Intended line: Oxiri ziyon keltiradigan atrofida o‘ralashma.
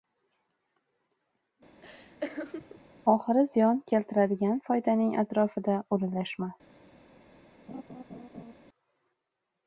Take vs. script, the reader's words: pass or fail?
fail